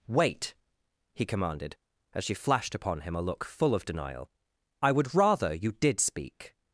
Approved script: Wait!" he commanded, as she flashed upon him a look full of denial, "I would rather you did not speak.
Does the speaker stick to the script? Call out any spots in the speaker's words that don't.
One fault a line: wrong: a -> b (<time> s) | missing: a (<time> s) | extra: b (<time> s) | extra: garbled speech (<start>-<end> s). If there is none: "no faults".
missing: not (6.0 s)